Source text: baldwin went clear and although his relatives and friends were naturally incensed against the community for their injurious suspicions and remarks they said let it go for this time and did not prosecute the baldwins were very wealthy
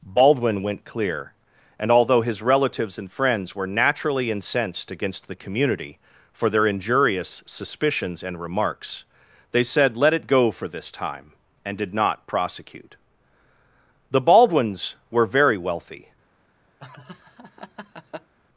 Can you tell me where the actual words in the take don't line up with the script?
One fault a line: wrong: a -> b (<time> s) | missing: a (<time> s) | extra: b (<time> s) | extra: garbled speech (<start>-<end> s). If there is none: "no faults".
no faults